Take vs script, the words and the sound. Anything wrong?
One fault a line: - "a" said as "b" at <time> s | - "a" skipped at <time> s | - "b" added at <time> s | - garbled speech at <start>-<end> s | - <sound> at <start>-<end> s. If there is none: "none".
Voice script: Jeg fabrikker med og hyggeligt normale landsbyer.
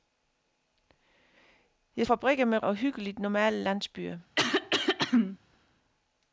- throat clearing at 4.4-5.4 s